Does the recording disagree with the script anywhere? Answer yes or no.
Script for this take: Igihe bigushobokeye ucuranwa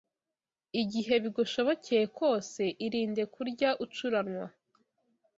yes